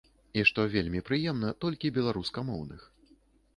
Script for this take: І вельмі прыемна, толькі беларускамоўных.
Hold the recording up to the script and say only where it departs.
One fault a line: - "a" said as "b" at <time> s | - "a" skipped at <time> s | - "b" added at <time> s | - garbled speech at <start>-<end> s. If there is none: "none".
- "што" added at 0.5 s